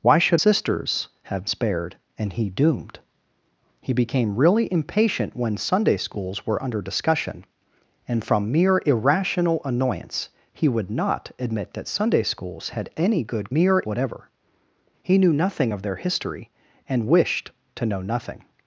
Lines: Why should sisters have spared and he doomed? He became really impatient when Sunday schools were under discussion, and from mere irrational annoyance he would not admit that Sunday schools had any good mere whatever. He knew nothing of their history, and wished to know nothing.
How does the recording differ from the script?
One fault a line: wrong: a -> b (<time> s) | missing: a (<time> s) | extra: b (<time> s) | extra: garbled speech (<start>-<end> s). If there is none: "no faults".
no faults